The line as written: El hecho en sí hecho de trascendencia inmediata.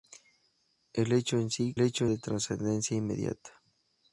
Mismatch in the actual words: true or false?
false